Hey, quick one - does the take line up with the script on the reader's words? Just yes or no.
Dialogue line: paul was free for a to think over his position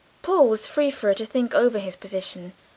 yes